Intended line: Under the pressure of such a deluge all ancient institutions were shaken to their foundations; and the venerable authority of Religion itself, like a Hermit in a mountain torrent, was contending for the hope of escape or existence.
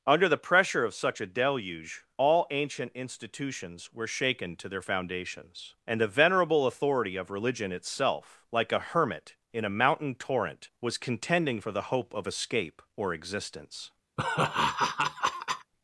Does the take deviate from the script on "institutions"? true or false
false